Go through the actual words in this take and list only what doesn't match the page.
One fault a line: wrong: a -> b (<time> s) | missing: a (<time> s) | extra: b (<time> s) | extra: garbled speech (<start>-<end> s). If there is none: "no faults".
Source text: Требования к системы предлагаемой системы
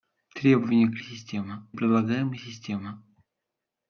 no faults